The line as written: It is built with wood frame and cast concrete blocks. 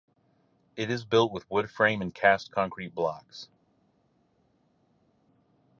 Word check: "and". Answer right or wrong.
right